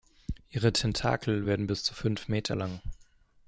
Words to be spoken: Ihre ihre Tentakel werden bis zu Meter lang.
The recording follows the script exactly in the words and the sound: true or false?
false